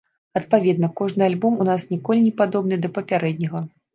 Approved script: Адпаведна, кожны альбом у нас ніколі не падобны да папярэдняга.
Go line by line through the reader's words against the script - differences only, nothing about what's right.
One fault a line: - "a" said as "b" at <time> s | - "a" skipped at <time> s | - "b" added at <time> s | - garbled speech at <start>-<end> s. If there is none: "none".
none